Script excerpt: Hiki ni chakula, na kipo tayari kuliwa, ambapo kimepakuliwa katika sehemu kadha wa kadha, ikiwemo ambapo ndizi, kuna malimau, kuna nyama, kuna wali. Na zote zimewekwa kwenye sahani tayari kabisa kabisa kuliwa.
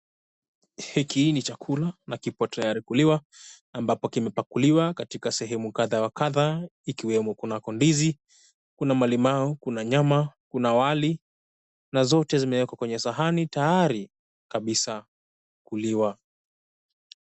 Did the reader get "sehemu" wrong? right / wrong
right